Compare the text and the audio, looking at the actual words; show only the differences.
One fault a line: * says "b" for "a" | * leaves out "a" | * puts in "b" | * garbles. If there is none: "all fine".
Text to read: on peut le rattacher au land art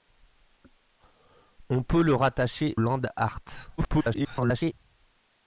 * leaves out "au"
* garbles